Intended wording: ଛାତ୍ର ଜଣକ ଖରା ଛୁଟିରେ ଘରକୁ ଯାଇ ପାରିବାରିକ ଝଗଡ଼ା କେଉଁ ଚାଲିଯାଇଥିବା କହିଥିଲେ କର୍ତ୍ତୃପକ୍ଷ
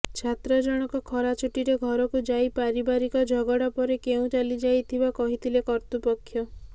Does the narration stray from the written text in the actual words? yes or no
yes